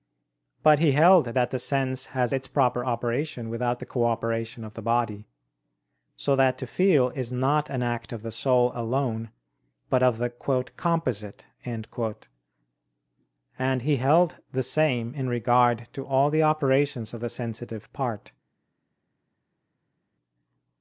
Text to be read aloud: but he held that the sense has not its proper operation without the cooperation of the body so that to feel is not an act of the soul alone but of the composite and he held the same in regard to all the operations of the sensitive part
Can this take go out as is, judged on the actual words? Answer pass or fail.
fail